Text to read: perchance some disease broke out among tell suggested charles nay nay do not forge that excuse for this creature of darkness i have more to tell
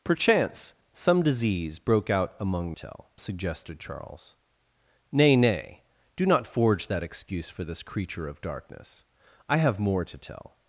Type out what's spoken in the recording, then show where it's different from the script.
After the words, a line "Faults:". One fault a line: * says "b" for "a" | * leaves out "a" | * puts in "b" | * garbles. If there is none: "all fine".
perchance some disease broke out among tell suggested charles nay nay do not forge that excuse for this creature of darkness i have more to tell
Faults:
all fine